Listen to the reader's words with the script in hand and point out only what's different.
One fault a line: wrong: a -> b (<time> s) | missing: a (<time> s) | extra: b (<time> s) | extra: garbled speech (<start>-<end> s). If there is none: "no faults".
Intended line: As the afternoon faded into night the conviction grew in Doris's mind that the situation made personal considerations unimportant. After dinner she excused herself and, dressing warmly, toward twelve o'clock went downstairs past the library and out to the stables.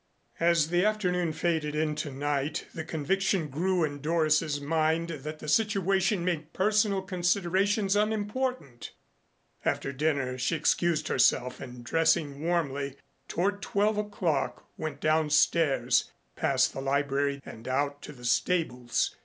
no faults